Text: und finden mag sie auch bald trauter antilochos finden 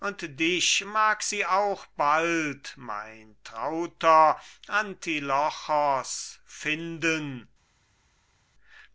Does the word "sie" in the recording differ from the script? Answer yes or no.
no